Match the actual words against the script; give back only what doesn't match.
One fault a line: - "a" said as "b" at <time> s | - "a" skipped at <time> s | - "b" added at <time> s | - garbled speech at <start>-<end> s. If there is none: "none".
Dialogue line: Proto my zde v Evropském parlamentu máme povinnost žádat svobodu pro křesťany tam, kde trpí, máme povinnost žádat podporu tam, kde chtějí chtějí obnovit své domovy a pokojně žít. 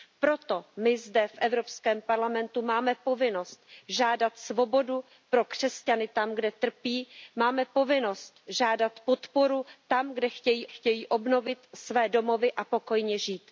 none